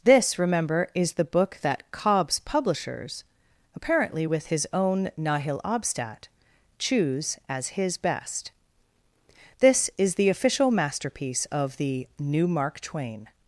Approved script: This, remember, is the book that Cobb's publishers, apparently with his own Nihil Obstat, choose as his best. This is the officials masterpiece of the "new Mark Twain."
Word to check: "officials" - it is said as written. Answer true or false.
false